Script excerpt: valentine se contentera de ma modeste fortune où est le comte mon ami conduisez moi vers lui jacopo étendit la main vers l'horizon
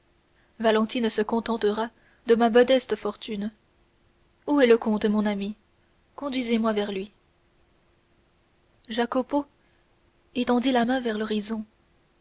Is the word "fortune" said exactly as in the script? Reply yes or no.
yes